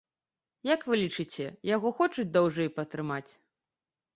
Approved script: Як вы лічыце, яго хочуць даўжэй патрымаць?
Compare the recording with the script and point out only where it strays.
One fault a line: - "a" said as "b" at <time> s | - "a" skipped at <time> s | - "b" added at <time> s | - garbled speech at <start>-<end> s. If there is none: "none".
none